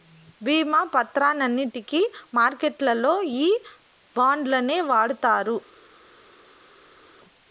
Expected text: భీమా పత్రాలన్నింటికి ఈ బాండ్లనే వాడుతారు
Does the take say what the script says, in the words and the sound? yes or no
no